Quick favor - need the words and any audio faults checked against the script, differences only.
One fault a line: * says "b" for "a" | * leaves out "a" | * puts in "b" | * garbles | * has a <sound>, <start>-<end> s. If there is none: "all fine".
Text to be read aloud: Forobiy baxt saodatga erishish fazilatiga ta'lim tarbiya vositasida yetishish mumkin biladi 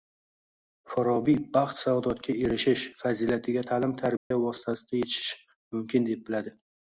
* has a dropout, 4.2-4.3 s
* puts in "deb"